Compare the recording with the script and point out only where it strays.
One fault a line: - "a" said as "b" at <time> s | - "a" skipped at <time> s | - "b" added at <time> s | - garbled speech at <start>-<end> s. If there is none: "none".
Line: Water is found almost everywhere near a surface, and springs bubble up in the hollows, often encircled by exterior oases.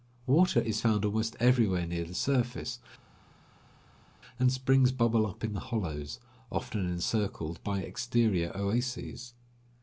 - "a" said as "the" at 2.0 s